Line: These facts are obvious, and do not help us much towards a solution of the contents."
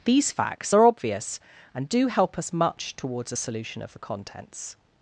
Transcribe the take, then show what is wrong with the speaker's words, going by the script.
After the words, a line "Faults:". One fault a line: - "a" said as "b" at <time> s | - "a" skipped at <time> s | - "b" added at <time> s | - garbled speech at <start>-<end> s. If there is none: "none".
These facts are obvious, and do help us much towards a solution of the contents."
Faults:
- "not" skipped at 2.1 s